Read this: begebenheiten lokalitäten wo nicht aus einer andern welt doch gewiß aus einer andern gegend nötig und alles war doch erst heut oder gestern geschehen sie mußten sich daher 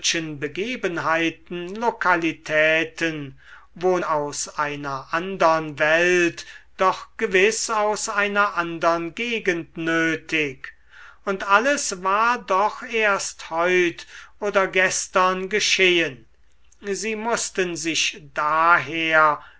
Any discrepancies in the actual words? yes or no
yes